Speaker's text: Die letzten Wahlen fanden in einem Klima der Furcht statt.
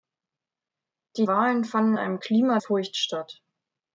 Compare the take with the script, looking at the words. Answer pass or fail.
fail